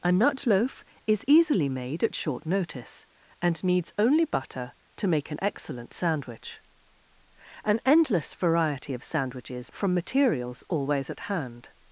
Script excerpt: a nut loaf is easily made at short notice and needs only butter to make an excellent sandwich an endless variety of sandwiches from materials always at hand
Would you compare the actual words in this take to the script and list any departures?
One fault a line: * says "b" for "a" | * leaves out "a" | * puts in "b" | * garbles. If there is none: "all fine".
all fine